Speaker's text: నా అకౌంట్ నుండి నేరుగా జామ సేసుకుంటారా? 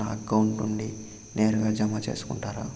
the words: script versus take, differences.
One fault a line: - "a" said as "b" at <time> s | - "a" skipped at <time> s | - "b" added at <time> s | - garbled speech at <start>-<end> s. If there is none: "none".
none